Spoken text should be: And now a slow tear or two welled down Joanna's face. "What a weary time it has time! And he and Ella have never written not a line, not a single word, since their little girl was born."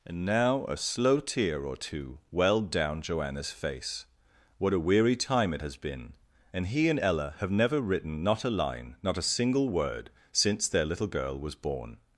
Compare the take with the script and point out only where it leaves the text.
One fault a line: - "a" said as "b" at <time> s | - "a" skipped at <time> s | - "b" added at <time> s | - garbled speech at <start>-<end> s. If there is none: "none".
- "time" said as "been" at 5.8 s